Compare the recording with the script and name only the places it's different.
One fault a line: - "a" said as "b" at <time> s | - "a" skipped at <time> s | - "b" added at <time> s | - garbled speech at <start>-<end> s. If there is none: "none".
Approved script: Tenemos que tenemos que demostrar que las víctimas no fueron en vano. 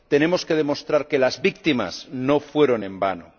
- "tenemos que" skipped at 0.6 s